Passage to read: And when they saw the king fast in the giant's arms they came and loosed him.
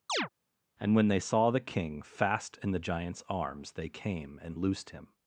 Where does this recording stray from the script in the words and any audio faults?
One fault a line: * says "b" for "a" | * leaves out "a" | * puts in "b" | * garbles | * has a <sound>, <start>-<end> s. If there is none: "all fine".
* has a chirp, 0.1-0.3 s